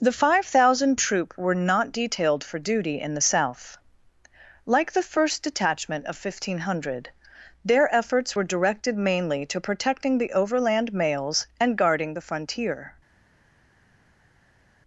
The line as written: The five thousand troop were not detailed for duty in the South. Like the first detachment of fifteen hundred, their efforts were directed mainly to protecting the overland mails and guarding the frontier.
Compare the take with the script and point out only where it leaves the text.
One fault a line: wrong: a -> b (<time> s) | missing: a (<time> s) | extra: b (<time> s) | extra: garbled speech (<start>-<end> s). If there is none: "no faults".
no faults